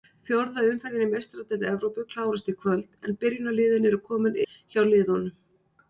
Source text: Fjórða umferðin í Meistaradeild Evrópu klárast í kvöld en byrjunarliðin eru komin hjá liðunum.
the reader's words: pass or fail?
pass